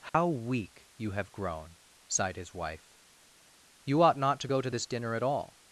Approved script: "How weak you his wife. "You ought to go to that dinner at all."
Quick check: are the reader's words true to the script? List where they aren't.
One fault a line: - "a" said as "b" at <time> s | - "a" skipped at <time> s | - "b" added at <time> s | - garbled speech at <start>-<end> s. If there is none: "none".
- "have grown sighed" added at 1.1 s
- "not" added at 4.2 s
- "that" said as "this" at 4.7 s